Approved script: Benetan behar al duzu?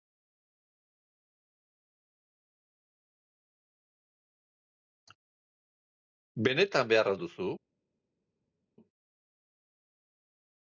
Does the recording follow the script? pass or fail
pass